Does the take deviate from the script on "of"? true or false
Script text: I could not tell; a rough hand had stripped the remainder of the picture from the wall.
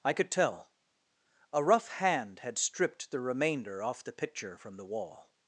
true